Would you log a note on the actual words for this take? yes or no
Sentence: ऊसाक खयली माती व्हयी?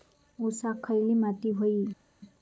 no